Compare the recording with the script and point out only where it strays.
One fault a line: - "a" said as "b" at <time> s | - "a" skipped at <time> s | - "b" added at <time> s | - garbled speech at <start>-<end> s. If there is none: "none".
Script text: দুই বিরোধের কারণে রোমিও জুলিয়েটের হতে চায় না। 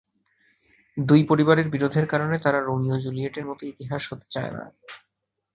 - "পরিবারের" added at 1.2 s
- "তারা" added at 2.4 s
- "মতো ইতিহাস" added at 3.4 s